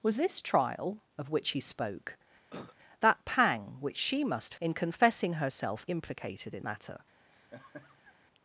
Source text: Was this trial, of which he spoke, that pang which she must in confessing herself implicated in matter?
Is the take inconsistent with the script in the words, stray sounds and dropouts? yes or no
yes